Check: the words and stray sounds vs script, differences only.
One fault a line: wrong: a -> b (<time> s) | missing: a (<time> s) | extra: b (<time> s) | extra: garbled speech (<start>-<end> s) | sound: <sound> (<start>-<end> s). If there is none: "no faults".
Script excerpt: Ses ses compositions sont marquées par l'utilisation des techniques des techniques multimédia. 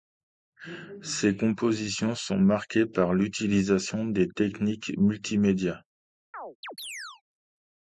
missing: ses (1.4 s)
missing: des techniques (4.9 s)
sound: chirp (6.3-7.2 s)